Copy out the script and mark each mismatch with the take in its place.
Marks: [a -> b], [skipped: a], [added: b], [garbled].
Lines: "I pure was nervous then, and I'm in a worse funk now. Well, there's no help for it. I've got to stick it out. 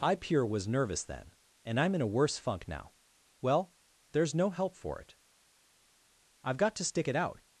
"I pure was nervous then, and I'm in a worse funk now. Well, there's no help for it. I've got to stick it out.